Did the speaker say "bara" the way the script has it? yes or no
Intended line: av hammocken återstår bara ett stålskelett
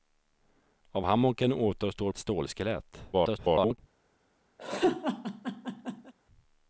no